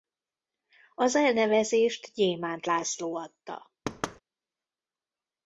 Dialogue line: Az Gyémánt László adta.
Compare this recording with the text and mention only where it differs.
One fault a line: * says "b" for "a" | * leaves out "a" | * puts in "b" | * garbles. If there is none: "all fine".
* puts in "elnevezést"